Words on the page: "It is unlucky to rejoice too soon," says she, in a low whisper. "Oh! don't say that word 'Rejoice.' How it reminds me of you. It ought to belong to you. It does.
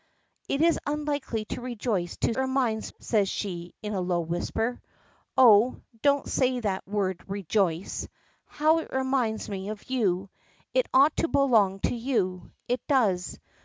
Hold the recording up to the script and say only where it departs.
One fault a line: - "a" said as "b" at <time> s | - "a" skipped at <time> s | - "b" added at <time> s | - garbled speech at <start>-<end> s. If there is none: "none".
- "soon" said as "reminds" at 2.4 s